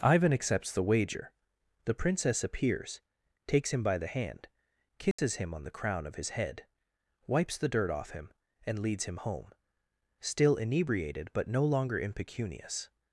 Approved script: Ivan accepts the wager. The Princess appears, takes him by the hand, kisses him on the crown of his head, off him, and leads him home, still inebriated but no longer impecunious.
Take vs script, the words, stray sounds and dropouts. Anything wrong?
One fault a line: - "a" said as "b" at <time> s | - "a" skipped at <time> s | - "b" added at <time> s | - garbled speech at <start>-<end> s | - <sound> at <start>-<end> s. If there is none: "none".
- dropout at 5.1-5.2 s
- "wipes the dirt" added at 7.3 s